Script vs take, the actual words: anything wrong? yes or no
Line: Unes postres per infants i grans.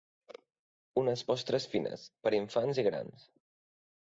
yes